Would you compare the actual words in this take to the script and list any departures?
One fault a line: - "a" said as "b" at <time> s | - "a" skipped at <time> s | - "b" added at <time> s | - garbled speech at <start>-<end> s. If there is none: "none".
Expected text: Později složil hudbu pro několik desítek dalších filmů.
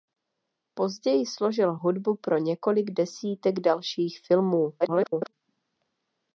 - garbled speech at 4.8-5.3 s